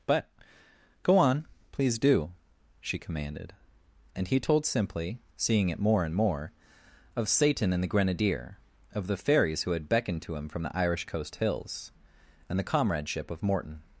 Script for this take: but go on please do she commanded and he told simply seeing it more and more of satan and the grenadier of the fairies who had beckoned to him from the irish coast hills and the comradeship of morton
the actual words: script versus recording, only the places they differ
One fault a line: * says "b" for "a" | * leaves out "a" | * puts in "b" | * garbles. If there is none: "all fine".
all fine